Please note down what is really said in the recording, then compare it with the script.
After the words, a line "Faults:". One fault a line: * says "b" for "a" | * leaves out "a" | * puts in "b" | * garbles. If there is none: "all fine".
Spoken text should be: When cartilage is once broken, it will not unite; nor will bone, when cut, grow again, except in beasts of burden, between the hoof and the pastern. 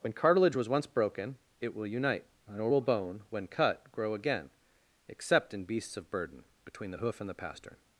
When cartilage was once broken, it will unite; nor will bone, when cut, grow again, except in beasts of burden, between the hoof and the pastern.
Faults:
* says "was" for "is"
* leaves out "not"